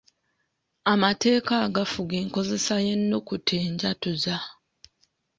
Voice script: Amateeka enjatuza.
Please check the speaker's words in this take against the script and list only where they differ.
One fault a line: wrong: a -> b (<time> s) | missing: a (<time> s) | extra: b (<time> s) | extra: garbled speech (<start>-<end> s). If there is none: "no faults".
extra: agafuga enkozesa y'ennukuta (1.7 s)